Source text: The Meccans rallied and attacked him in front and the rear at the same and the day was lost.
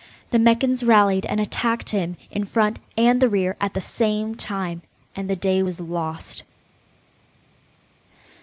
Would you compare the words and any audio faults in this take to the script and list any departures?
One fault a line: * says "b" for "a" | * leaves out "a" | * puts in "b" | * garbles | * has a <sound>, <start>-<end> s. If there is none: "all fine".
* puts in "time"